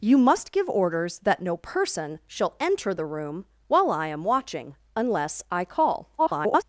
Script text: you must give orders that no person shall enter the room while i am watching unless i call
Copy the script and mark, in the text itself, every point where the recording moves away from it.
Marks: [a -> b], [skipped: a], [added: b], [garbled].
you must give orders that no person shall enter the room while i am watching unless i call [garbled]